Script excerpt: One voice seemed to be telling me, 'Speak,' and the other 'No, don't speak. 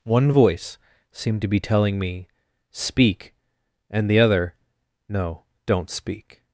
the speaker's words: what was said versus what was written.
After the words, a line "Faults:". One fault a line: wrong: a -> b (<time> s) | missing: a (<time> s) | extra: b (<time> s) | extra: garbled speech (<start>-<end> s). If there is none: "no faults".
One voice seemed to be telling me, 'Speak,' and the other 'No, don't speak.
Faults:
no faults